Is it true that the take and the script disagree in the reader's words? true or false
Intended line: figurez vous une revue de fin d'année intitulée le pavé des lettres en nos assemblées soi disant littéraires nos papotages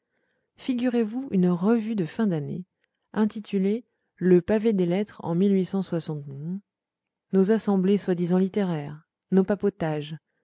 false